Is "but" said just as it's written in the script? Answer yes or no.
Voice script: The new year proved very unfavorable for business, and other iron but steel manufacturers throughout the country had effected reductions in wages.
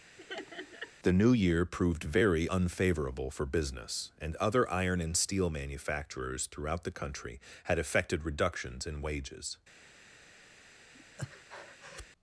no